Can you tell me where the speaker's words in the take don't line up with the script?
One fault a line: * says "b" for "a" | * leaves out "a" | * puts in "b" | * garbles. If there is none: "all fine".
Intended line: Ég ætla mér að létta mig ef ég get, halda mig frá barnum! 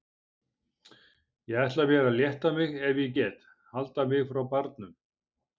all fine